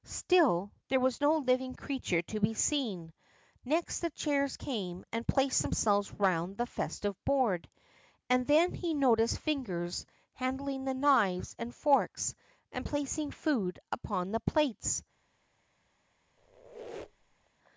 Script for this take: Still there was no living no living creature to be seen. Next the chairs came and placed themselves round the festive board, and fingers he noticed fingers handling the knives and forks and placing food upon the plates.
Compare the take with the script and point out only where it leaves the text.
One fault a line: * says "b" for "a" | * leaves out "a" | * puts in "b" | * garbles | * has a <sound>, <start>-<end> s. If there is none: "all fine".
* leaves out "no living"
* says "then" for "fingers"
* has a squeak, 16.4-17.5 s